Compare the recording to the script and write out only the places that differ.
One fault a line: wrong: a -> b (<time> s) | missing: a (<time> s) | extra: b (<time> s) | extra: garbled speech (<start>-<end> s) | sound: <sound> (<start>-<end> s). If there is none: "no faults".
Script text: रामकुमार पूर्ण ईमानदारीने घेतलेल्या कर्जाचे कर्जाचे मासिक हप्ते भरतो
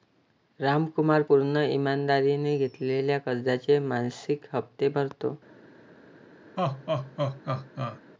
missing: कर्जाचे (3.8 s)
sound: laugh (6.6-8.0 s)